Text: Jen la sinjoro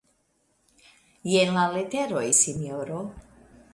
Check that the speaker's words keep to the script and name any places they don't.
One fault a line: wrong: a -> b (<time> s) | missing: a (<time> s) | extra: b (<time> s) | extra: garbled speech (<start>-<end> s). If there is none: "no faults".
extra: leteroj (1.8 s)